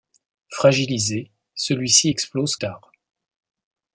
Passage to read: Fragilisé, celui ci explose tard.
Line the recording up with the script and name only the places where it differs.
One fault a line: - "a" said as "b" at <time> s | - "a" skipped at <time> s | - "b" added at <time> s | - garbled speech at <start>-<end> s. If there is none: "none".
none